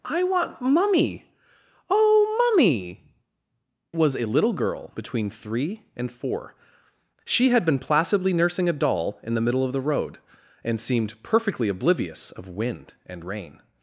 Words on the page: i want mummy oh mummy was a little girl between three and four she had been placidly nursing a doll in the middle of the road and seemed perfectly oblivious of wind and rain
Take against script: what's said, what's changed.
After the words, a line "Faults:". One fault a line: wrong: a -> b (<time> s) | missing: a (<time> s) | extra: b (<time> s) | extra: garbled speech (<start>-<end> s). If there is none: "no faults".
i want mummy oh mummy was a little girl between three and four she had been placidly nursing a doll in the middle of the road and seemed perfectly oblivious of wind and rain
Faults:
no faults